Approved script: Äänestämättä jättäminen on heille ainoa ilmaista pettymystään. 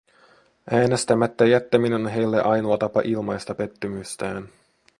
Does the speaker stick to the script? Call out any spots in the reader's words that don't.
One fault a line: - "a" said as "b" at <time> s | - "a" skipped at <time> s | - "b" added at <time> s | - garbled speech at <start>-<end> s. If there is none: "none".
- "tapa" added at 2.7 s